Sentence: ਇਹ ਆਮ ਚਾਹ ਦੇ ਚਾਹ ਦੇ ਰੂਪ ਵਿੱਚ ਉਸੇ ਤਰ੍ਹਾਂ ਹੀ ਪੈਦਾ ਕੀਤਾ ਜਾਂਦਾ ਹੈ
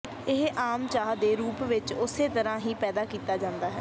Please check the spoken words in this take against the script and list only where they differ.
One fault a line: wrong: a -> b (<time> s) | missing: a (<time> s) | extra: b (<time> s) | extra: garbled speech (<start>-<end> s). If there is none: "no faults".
missing: ਚਾਹ ਦੇ (1.4 s)